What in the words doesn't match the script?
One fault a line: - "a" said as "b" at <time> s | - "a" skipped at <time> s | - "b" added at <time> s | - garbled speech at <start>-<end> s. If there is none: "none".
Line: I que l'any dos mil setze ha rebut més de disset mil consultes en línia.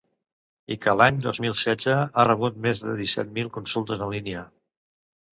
none